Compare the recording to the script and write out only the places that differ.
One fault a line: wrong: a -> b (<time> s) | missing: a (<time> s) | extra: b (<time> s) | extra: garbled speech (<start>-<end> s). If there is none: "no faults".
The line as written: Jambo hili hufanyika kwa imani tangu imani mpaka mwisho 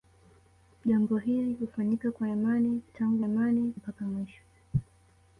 no faults